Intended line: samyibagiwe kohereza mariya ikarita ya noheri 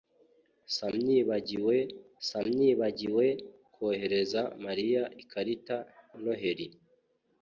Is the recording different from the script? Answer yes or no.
yes